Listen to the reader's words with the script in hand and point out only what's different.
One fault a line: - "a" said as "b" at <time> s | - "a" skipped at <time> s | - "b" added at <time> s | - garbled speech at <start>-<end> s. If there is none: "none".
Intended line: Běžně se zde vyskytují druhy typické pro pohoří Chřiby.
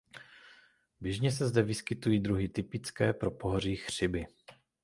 none